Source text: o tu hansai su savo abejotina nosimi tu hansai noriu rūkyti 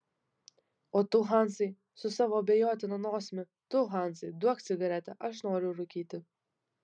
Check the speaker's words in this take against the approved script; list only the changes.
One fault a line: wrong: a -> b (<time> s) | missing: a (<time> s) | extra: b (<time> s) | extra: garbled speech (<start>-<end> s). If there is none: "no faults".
extra: duok cigaretę aš (4.5 s)